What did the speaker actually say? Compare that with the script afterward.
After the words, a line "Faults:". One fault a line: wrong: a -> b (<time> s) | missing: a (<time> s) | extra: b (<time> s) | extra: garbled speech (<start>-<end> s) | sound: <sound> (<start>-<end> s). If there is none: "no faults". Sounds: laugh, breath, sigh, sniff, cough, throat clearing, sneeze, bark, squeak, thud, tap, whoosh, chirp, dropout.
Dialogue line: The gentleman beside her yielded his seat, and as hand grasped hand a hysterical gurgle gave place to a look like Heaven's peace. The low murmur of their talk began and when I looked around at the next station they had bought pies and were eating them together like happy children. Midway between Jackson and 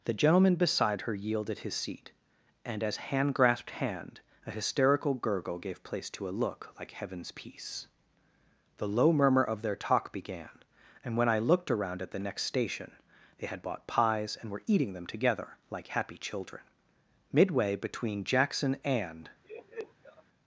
The gentleman beside her yielded his seat, and as hand grasped hand a hysterical gurgle gave place to a look like Heaven's peace. The low murmur of their talk began and when I looked around at the next station they had bought pies and were eating them together like happy children. Midway between Jackson and
Faults:
sound: laugh (19.4-20.2 s)